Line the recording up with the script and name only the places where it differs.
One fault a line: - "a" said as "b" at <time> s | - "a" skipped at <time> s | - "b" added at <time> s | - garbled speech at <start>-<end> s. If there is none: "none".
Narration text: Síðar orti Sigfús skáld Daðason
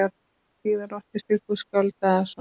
none